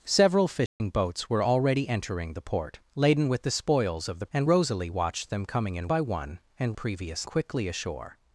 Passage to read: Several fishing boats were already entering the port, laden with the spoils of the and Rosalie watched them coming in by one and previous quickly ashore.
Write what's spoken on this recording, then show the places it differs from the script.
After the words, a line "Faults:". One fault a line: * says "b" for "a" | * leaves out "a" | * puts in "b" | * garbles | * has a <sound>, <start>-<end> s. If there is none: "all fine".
Several fishing boats were already entering the port, laden with the spoils of the and Rosalie watched them coming in by one and previous quickly ashore.
Faults:
* has a dropout, 0.7-0.8 s